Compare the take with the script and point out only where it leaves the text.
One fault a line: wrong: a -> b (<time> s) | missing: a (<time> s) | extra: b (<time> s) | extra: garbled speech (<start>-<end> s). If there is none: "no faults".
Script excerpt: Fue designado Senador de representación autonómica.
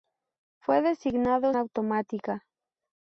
missing: Senador de representación (1.5 s)